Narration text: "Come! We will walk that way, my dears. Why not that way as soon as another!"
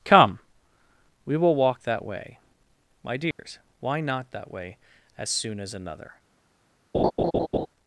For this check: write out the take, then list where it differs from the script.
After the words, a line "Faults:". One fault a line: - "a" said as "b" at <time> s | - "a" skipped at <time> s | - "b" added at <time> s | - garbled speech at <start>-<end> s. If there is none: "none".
"Come! We will walk that way, my dears. Why not that way as soon as another!"
Faults:
none